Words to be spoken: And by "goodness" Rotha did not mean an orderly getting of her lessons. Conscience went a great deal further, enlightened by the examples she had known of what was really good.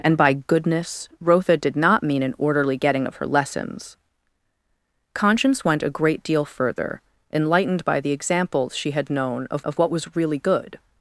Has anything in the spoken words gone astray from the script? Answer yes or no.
yes